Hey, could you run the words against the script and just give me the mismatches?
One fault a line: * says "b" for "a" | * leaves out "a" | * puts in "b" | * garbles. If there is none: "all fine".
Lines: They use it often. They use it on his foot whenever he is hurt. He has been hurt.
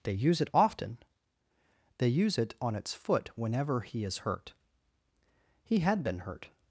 * says "its" for "his"
* says "had" for "has"